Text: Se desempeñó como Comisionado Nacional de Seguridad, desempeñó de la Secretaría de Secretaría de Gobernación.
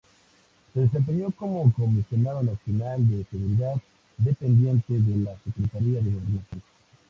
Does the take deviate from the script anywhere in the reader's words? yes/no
yes